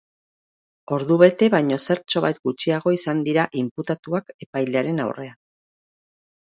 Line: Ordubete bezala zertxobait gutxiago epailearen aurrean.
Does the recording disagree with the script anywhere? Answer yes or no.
yes